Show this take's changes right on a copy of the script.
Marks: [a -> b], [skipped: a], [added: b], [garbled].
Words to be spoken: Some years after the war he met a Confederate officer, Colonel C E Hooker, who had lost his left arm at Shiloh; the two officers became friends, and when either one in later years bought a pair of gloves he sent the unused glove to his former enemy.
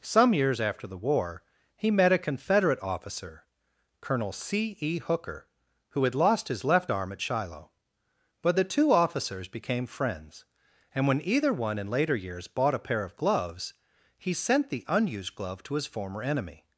Some years after the war he met a Confederate officer, Colonel C E Hooker, who had lost his left arm at Shiloh; [added: but] the two officers became friends, and when either one in later years bought a pair of gloves he sent the unused glove to his former enemy.